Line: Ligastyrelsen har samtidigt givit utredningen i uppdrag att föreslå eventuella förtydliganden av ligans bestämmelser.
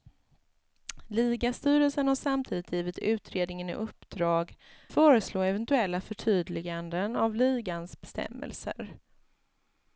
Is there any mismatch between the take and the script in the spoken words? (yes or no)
yes